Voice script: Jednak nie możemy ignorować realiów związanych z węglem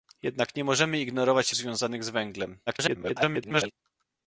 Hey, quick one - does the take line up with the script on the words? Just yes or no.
no